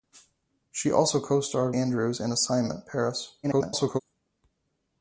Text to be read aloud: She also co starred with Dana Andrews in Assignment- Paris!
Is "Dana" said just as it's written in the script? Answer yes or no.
no